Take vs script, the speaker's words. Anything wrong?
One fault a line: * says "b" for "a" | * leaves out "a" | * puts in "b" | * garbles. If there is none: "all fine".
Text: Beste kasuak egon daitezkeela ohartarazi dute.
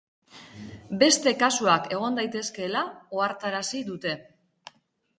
all fine